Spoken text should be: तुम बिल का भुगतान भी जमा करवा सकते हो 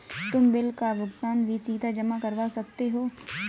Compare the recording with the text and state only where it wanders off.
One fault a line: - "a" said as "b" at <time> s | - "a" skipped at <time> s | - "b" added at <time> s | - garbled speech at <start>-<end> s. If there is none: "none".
- "सीधा" added at 1.6 s